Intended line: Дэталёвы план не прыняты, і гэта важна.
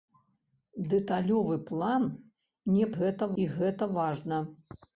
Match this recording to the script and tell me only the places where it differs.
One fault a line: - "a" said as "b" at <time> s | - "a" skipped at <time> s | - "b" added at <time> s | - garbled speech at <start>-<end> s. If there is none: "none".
- "прыняты" said as "гэта" at 3.0 s